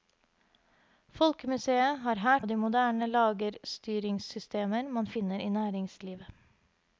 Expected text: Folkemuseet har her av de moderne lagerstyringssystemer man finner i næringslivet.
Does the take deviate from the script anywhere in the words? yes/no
no